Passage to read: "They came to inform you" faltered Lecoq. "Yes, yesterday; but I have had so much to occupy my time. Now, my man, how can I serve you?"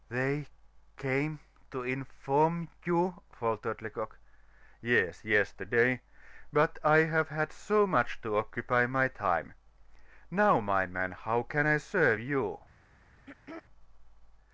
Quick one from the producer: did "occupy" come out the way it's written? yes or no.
yes